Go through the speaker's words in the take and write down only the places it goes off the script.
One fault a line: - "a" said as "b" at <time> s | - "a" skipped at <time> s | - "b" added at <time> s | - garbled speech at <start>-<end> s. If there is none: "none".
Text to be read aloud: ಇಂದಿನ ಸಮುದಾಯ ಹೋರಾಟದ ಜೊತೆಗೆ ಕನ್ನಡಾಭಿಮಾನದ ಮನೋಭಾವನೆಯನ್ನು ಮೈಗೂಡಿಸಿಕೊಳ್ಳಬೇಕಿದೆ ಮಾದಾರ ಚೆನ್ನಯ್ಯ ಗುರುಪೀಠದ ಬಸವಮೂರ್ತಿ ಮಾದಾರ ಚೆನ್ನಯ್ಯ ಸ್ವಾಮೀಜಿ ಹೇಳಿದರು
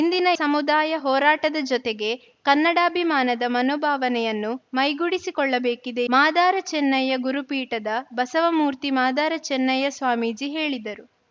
none